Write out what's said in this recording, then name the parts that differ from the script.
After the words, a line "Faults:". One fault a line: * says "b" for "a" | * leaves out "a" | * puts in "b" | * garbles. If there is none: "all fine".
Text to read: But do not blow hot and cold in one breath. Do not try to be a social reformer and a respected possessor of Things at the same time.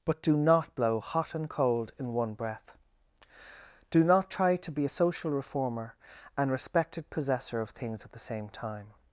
But do not blow hot and cold in one breath. Do not try to be a social reformer and respected possessor of Things at the same time.
Faults:
* leaves out "a"